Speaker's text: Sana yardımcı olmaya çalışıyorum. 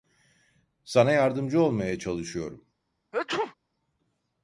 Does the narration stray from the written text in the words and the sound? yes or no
yes